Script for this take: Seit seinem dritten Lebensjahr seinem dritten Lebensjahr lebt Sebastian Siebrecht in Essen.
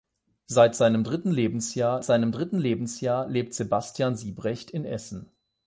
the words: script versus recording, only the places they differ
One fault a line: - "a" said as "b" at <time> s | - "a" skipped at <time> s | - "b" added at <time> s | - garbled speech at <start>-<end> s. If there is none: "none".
none